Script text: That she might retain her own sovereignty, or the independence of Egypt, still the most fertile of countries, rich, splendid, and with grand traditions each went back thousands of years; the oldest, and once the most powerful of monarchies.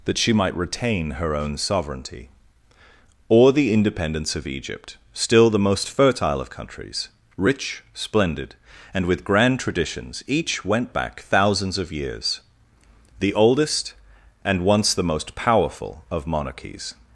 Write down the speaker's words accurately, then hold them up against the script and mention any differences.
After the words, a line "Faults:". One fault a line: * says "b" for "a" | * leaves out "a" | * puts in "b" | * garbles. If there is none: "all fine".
That she might retain her own sovereignty, or the independence of Egypt, still the most fertile of countries, rich, splendid, and with grand traditions each went back thousands of years; the oldest, and once the most powerful of monarchies.
Faults:
all fine